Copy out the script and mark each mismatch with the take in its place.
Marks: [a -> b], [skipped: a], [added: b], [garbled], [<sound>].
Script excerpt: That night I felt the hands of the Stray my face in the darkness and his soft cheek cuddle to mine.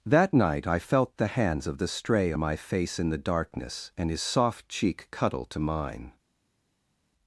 That night I felt the hands of the Stray my face in the darkness and his soft cheek cuddle to mine.